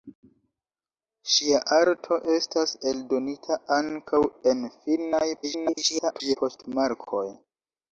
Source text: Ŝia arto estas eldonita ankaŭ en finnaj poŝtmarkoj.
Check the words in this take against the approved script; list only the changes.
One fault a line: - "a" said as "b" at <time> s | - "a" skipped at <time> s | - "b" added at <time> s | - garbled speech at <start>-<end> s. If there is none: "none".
- garbled speech at 5.4-6.4 s